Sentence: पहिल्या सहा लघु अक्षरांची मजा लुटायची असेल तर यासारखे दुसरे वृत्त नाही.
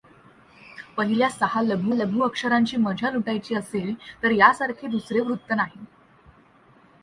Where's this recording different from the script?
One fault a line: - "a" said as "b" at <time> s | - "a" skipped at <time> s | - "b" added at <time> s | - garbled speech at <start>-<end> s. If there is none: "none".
- "लघु" added at 1.9 s